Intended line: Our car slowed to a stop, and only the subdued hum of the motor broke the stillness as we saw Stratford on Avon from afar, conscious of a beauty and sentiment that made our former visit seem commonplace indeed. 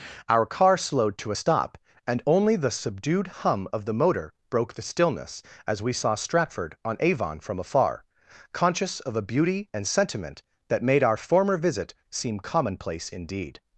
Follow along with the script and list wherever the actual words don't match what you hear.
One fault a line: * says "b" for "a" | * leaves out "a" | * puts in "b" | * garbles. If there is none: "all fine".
all fine